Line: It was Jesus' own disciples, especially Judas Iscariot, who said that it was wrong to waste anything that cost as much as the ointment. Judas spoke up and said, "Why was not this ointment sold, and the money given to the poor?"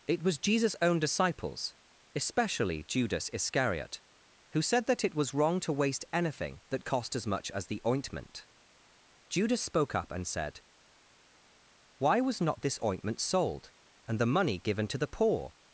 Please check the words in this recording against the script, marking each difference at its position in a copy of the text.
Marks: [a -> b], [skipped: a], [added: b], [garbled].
It was Jesus' own disciples, especially Judas Iscariot, who said that it was wrong to waste anything that cost as much as the ointment. Judas spoke up and said, "Why was not this ointment sold, and the money given to the poor?"